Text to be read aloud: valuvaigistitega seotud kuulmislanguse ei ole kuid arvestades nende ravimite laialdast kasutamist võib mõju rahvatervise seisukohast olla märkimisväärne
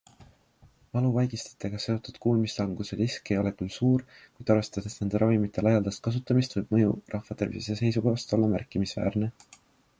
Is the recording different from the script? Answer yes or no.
yes